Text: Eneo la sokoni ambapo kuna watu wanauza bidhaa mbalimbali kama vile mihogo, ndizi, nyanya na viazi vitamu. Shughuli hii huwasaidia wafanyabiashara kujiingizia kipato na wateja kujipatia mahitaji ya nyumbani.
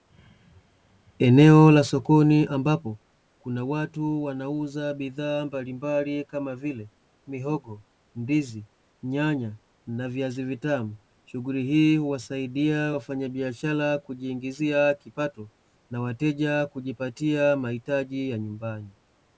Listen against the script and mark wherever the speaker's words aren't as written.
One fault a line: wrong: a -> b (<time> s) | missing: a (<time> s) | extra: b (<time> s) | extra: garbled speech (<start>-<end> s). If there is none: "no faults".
no faults